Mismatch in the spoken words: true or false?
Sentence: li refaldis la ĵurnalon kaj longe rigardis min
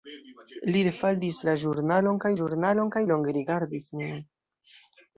true